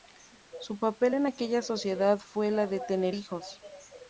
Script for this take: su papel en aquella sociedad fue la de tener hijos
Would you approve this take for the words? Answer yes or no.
yes